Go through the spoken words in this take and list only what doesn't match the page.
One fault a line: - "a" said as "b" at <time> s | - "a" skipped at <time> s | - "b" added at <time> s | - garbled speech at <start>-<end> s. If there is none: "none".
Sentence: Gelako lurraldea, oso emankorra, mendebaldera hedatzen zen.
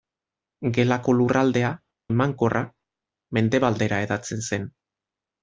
- "oso" skipped at 1.7 s